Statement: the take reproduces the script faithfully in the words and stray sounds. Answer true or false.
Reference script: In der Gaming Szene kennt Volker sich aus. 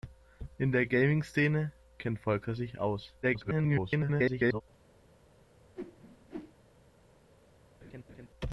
false